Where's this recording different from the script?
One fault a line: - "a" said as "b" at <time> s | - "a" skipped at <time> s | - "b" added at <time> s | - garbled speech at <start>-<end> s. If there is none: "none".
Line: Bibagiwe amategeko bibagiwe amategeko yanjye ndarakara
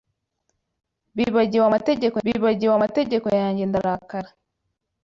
none